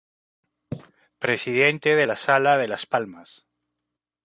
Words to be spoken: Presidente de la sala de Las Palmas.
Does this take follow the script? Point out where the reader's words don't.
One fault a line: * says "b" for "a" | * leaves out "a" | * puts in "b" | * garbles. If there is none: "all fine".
all fine